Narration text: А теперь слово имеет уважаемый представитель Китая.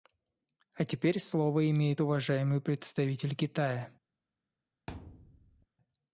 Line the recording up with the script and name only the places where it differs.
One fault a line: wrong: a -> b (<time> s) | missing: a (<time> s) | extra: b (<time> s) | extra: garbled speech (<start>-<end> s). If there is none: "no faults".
no faults